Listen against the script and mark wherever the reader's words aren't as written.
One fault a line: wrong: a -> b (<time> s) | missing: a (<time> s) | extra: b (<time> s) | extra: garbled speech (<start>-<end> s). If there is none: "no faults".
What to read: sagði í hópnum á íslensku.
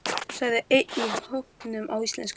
extra: einn (0.8 s)